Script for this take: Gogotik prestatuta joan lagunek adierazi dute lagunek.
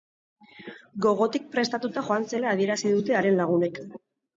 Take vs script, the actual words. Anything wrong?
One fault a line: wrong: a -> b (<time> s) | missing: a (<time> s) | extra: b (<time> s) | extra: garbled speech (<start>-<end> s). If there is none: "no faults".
wrong: lagunek -> zela (2.3 s)
extra: haren (3.2 s)